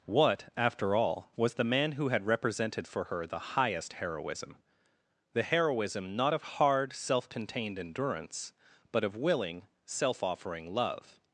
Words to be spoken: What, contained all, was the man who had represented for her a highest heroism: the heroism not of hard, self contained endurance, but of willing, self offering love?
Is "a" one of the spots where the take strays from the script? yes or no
yes